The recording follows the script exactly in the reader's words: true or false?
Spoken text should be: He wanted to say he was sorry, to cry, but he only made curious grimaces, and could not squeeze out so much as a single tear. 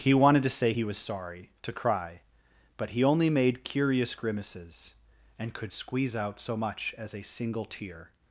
false